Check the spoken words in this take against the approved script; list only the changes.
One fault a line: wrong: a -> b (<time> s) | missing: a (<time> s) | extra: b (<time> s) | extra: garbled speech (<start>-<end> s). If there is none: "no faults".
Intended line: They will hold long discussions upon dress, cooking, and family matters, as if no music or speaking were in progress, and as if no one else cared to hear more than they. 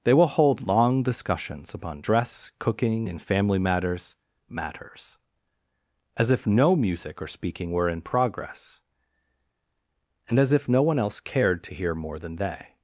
extra: matters (4.5 s)